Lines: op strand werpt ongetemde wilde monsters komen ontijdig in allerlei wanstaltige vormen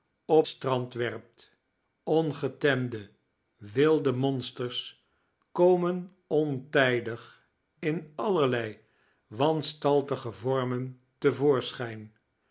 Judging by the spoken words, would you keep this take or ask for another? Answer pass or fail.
pass